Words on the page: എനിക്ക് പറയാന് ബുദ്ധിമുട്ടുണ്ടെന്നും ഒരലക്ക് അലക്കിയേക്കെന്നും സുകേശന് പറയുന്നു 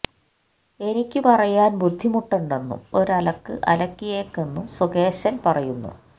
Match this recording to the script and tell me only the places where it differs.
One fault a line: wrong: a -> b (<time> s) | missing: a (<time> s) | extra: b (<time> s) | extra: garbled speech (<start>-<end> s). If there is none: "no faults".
no faults